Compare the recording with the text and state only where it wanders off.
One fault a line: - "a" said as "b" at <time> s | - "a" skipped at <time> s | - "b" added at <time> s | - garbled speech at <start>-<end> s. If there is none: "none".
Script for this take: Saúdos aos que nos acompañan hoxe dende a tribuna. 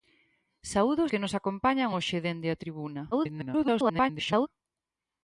- "aos" skipped at 1.1 s
- garbled speech at 3.1-4.5 s